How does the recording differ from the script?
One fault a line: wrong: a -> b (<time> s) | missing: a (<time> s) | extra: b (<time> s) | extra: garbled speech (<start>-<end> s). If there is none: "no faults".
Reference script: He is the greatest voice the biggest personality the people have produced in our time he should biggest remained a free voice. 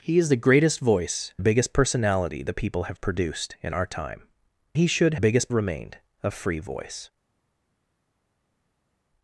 no faults